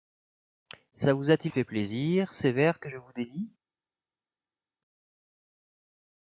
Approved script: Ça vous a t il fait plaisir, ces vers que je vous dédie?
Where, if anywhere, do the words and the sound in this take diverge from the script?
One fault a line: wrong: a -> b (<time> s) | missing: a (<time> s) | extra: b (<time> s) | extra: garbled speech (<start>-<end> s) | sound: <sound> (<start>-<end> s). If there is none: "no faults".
no faults